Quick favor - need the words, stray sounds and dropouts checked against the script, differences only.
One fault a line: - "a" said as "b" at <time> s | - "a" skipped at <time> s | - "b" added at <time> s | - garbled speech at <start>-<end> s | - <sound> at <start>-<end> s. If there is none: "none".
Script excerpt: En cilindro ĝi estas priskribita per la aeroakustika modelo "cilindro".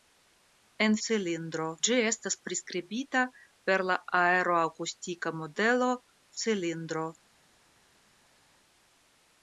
none